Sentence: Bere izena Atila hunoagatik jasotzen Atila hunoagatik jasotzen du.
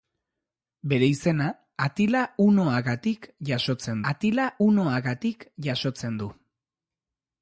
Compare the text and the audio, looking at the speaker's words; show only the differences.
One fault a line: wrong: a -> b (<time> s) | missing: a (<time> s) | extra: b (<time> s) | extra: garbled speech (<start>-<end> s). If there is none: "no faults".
no faults